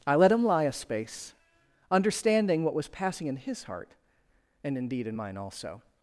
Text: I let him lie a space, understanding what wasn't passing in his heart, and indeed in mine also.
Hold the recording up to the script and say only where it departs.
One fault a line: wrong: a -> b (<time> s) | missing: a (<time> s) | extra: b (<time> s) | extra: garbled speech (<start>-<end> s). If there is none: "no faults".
wrong: wasn't -> was (2.7 s)